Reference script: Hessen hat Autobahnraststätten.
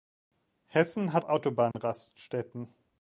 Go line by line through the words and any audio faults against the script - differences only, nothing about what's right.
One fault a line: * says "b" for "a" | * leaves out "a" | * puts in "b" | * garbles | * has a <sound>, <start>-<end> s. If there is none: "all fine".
* has a dropout, 1.7-1.7 s